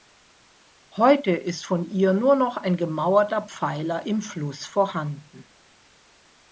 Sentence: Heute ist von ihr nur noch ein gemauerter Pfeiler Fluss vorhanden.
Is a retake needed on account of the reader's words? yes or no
yes